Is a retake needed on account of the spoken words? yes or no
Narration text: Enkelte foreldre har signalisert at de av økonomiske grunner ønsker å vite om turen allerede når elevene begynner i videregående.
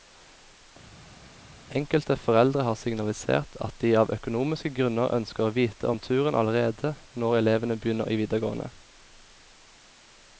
no